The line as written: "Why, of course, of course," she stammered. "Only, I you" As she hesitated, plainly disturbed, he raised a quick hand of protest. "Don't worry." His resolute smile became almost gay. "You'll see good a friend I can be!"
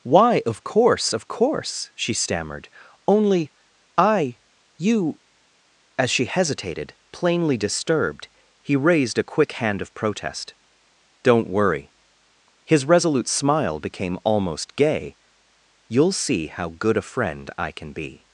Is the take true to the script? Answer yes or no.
no